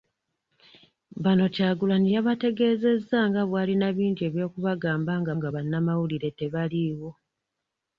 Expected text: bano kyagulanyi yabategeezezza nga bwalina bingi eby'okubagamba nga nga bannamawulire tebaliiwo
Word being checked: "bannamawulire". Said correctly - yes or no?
yes